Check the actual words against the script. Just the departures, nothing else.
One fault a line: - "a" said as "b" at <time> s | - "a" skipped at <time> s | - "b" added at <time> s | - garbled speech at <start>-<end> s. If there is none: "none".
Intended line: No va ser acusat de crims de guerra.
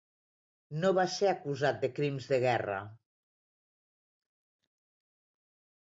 none